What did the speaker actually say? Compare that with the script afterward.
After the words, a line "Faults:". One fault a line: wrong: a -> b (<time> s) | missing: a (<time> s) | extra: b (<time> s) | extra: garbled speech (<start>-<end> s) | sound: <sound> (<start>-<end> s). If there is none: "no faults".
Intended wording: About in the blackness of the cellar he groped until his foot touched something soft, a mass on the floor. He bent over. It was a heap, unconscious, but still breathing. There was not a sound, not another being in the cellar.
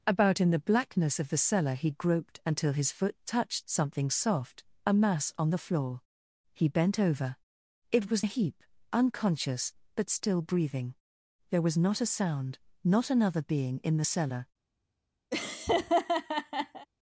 About in the blackness of the cellar he groped until his foot touched something soft, a mass on the floor. He bent over. It was a heap, unconscious, but still breathing. There was not a sound, not another being in the cellar.
Faults:
sound: laugh (15.3-16.9 s)